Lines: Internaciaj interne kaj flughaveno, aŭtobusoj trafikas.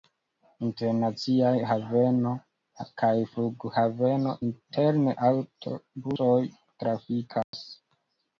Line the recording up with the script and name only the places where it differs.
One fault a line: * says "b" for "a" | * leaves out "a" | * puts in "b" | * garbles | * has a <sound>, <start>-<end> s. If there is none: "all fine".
* says "haveno" for "interne"
* puts in "interne"
* has a dropout, 7.4-7.5 s